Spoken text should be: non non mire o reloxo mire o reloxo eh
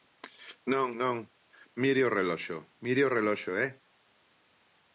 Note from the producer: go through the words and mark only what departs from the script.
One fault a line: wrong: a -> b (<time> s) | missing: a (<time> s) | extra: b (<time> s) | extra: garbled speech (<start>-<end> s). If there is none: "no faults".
no faults